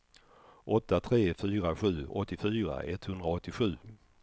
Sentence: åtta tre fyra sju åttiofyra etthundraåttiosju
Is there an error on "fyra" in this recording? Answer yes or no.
no